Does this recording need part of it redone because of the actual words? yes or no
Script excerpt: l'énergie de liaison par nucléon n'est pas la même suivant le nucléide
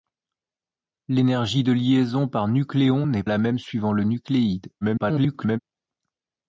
yes